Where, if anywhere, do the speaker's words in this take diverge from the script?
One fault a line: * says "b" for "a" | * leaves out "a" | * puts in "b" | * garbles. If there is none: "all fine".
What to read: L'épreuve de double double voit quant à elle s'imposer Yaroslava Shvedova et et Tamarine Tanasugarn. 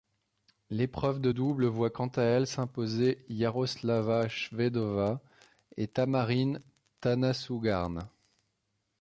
* leaves out "double"
* leaves out "et"